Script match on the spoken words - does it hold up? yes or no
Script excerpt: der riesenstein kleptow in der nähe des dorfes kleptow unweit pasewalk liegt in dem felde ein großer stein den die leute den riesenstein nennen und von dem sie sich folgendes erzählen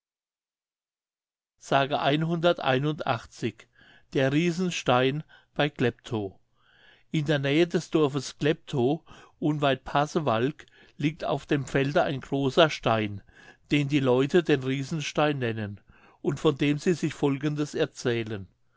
no